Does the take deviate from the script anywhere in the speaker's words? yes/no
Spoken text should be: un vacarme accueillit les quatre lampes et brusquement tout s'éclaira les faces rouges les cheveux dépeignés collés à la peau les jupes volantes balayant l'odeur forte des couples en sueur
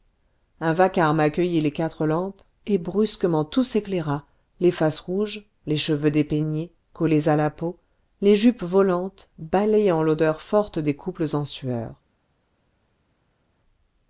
no